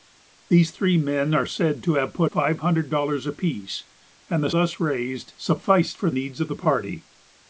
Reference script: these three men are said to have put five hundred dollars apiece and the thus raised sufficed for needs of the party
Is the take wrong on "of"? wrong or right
right